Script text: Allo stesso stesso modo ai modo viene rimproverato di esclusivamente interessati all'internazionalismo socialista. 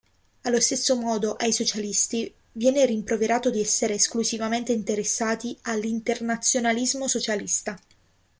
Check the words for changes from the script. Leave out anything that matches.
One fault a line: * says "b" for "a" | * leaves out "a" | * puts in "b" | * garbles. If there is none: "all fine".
* leaves out "stesso"
* says "socialisti" for "modo"
* puts in "essere"